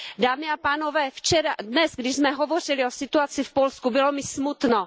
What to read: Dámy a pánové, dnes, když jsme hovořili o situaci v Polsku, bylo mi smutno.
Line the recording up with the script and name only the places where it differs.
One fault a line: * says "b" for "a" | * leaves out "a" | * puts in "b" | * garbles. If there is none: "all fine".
all fine